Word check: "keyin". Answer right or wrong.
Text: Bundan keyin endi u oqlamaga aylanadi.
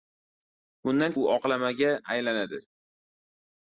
wrong